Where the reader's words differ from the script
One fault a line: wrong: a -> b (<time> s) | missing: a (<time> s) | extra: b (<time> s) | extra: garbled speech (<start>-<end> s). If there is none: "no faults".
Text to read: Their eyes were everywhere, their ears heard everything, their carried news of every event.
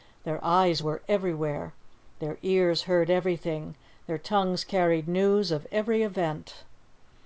extra: tongues (4.2 s)